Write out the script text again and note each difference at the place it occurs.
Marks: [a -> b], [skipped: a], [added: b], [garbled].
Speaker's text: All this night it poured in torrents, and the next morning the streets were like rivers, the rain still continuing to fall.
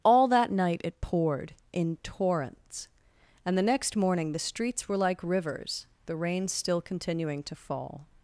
All [this -> that] night it poured in torrents, and the next morning the streets were like rivers, the rain still continuing to fall.